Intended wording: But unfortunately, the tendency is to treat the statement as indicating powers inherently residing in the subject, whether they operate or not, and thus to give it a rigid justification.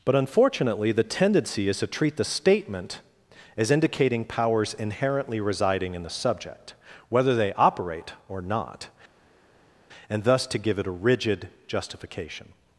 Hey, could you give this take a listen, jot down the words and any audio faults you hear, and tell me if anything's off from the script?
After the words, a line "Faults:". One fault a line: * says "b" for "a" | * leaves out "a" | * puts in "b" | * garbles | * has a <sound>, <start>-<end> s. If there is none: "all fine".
But unfortunately, the tendency is to treat the statement as indicating powers inherently residing in the subject, whether they operate or not, and thus to give it a rigid justification.
Faults:
all fine